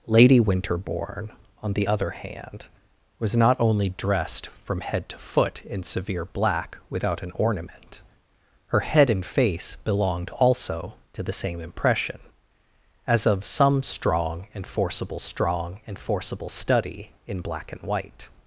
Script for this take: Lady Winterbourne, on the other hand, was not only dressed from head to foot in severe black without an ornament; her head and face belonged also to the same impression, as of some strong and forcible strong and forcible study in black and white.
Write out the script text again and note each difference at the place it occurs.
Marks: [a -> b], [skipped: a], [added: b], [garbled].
Lady Winterbourne, on the other hand, was not only dressed from head to foot in severe black without an ornament; her head and face belonged also to the same impression, as of some strong and forcible strong and forcible study in black and white.